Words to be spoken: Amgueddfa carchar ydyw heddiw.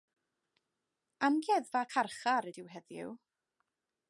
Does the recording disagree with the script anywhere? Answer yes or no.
no